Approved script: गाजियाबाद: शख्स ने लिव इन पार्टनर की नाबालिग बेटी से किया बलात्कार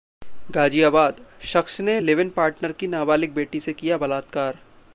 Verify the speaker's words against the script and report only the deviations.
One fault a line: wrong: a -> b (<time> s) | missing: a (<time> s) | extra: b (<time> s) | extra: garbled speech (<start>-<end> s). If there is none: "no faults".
no faults